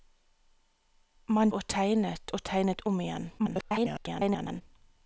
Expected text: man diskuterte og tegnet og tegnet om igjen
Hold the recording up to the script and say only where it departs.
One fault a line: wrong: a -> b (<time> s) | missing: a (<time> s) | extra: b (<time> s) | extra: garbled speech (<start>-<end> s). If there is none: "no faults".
missing: diskuterte (1.5 s)
extra: garbled speech (3.4-4.6 s)